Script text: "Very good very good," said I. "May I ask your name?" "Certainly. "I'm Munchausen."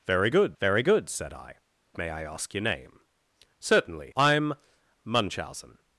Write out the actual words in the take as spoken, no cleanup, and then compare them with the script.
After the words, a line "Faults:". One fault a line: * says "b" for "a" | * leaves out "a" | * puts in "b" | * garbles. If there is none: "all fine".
"Very good very good," said I. "May I ask your name?" "Certainly. "I'm Munchausen."
Faults:
all fine